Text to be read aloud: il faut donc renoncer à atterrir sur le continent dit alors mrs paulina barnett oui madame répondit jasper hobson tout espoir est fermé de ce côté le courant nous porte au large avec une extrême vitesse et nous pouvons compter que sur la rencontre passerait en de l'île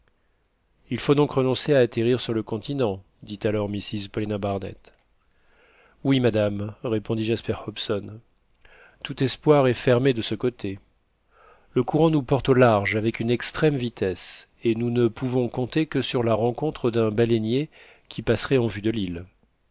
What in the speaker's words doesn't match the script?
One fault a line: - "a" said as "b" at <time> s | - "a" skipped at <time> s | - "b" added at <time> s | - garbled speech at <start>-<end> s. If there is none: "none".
- "ne" added at 14.9 s
- "d'un baleinier qui" added at 16.9 s
- "vue" added at 18.7 s